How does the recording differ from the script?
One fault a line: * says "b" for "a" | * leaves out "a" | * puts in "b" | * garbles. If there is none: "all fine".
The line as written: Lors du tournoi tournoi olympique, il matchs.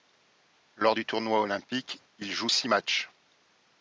* leaves out "tournoi"
* puts in "joue six"